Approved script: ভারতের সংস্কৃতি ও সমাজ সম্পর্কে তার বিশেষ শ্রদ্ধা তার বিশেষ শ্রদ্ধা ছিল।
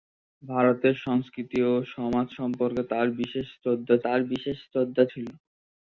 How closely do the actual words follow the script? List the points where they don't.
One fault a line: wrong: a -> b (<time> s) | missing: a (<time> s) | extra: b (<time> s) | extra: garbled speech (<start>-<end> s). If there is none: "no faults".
no faults